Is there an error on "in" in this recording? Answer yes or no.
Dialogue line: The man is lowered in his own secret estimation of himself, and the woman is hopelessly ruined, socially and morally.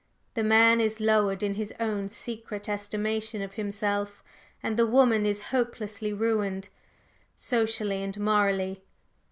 no